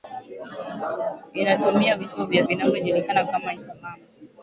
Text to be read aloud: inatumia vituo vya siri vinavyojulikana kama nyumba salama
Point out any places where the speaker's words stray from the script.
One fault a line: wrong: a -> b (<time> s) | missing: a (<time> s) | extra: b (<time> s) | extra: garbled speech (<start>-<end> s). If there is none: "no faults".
missing: siri (2.4 s)
missing: nyumba (3.5 s)